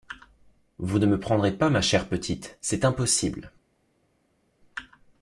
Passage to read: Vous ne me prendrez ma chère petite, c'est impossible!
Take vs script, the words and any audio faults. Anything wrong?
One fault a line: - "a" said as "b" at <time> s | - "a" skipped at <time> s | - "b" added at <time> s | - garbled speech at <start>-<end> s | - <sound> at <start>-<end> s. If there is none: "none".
- "pas" added at 1.6 s